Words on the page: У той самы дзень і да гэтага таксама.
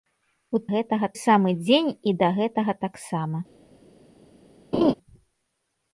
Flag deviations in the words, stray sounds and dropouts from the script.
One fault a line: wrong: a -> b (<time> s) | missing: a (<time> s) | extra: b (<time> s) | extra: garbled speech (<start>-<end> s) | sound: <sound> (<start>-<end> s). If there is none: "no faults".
wrong: той -> гэтага (0.8 s)
sound: laugh (4.7-4.9 s)